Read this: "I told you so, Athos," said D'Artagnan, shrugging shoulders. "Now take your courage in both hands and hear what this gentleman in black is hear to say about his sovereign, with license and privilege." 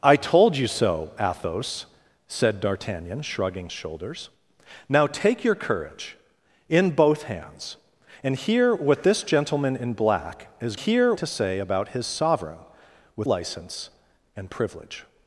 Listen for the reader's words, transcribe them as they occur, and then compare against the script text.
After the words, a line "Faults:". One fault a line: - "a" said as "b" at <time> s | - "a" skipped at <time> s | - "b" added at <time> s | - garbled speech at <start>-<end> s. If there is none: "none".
"I told you so, Athos," said D'Artagnan, shrugging shoulders. "Now take your courage in both hands and hear what this gentleman in black is hear to say about his sovereign, with license and privilege."
Faults:
none